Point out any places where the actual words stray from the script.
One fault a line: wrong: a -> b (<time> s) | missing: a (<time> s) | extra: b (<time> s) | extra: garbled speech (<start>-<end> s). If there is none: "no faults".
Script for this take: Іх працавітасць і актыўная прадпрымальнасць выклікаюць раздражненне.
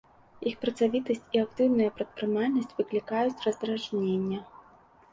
no faults